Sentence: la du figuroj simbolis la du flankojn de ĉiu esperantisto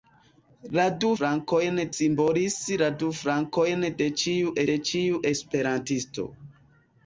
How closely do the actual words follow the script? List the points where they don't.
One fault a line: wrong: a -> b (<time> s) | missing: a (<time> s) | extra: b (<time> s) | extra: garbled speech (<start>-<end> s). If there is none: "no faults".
wrong: figuroj -> flankojn (1.2 s)
extra: de ĉiu (4.7 s)